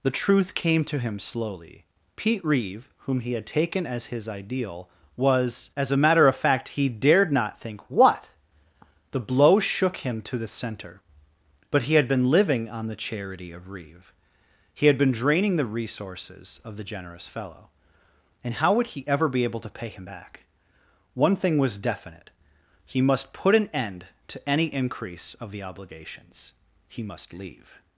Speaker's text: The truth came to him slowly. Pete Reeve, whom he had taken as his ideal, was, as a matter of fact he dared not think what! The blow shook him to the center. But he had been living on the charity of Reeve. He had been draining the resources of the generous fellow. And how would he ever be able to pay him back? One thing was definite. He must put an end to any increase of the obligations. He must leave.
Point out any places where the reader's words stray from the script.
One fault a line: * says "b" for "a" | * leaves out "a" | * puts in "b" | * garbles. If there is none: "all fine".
all fine